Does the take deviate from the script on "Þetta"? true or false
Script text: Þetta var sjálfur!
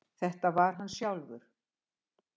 false